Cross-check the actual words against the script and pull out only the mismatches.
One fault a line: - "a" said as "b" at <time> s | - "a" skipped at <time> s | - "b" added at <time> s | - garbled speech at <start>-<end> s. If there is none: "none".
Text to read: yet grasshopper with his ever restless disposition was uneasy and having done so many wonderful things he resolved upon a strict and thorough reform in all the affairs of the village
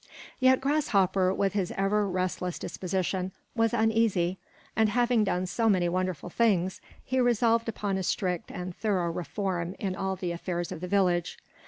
none